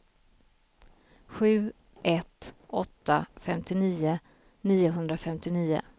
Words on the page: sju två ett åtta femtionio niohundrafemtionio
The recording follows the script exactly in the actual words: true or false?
false